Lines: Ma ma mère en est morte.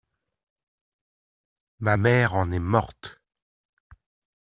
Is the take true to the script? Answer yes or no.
no